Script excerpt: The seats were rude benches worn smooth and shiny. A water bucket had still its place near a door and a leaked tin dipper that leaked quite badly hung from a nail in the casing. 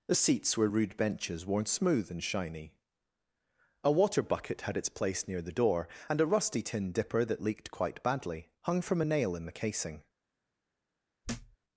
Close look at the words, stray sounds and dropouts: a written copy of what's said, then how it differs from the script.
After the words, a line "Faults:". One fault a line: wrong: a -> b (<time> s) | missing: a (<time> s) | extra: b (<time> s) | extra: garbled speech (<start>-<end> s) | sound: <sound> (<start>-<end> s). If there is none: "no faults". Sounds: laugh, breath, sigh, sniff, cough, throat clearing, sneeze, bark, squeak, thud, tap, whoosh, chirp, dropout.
The seats were rude benches worn smooth and shiny. A water bucket had its place near the door and a rusty tin dipper that leaked quite badly hung from a nail in the casing.
Faults:
missing: still (4.8 s)
wrong: a -> the (5.4 s)
wrong: leaked -> rusty (6.3 s)
sound: thud (11.2-11.6 s)